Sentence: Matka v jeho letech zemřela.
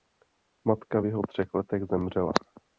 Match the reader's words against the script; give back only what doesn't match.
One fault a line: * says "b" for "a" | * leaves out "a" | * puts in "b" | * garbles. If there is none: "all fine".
* puts in "třech"